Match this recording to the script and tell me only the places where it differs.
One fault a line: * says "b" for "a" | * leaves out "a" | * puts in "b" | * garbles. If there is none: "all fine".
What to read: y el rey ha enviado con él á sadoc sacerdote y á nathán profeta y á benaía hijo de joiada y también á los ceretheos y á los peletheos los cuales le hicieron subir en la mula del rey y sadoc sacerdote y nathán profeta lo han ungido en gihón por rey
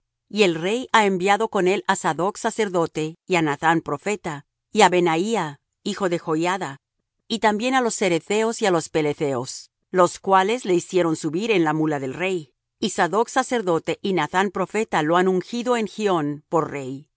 all fine